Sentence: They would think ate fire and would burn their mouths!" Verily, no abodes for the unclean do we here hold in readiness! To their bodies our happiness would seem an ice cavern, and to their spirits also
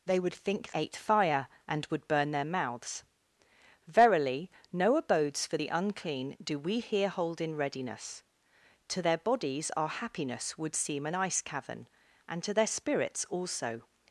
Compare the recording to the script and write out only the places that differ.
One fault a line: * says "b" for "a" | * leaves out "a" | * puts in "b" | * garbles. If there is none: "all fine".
all fine